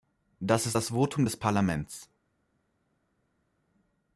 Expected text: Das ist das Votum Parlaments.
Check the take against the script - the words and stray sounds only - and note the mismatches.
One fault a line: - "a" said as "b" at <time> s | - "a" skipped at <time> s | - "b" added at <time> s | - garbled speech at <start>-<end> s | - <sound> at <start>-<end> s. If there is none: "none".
- "des" added at 1.2 s